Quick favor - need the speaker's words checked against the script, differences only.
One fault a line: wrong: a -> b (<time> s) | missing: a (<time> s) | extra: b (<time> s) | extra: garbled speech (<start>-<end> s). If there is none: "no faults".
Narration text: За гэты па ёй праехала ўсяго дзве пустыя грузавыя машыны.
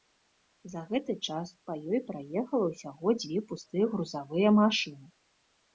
extra: час (1.3 s)